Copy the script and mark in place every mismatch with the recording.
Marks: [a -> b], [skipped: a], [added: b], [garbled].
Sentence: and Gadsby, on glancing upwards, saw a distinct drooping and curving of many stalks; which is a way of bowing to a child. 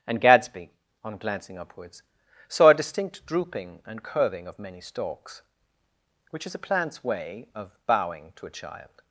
and Gadsby, on glancing upwards, saw a distinct drooping and curving of many stalks; which is a [added: plant's] way of bowing to a child.